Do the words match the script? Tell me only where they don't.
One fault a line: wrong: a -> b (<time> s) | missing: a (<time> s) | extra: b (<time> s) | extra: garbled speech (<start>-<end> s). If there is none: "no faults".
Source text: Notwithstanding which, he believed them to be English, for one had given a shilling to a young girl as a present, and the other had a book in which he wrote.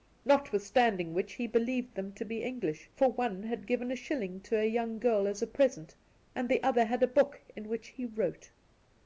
no faults